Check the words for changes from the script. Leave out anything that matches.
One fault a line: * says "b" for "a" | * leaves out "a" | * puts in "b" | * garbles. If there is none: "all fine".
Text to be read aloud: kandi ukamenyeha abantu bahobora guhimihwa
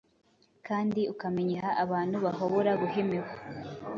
all fine